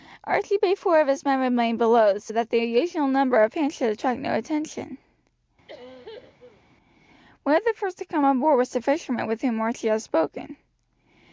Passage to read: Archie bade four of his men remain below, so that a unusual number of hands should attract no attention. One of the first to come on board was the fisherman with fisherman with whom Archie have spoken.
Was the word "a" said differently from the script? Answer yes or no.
yes